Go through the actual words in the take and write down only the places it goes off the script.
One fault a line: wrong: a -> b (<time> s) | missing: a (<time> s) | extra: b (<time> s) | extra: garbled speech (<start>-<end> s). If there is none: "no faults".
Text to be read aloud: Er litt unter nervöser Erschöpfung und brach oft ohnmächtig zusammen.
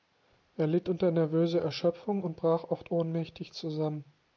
no faults